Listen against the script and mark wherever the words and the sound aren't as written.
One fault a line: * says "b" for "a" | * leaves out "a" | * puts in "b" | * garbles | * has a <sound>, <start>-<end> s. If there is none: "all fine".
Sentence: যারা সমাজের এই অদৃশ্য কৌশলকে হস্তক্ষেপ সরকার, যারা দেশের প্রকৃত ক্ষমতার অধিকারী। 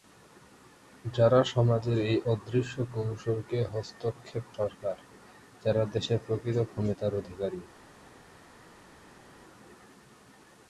all fine